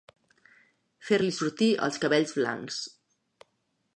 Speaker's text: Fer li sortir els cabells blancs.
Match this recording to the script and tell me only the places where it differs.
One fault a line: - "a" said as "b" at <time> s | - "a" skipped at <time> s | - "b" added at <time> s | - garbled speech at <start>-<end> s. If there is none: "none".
none